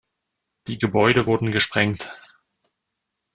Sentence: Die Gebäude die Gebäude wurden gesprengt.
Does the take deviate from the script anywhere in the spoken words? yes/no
yes